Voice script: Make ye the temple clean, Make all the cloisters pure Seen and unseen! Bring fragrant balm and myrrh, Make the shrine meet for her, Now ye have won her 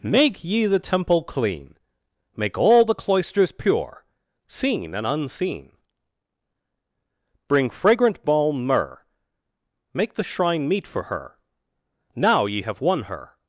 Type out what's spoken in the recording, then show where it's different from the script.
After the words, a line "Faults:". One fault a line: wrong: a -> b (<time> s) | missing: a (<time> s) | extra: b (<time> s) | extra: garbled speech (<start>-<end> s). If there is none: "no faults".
Make ye the temple clean, Make all the cloisters pure Seen and unseen! Bring fragrant balm myrrh, Make the shrine meet for her, Now ye have won her
Faults:
missing: and (8.7 s)